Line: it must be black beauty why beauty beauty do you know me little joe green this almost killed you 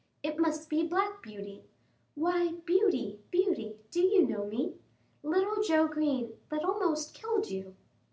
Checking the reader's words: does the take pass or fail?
fail